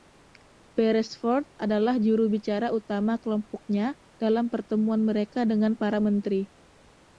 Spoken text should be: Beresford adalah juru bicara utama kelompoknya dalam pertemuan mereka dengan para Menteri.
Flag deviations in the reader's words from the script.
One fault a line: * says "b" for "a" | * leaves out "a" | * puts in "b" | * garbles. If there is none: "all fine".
all fine